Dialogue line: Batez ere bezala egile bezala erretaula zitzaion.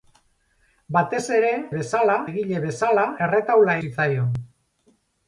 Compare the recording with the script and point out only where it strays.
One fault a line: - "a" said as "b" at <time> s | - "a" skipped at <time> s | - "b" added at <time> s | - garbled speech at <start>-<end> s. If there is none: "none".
none